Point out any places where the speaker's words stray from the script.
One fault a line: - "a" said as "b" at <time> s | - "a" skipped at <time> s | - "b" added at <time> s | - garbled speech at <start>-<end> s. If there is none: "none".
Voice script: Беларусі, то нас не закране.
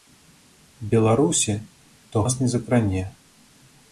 none